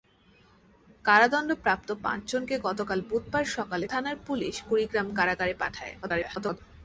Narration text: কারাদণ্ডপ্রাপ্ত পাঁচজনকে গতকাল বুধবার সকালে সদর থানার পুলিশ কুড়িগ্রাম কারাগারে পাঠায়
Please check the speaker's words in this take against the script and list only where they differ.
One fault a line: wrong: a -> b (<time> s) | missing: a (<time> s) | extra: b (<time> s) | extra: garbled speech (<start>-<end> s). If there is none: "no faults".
missing: সদর (3.9 s)
extra: garbled speech (6.0-6.6 s)